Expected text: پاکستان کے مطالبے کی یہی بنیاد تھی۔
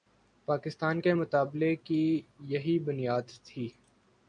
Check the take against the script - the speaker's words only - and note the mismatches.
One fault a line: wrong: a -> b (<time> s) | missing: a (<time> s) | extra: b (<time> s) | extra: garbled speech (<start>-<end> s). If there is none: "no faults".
no faults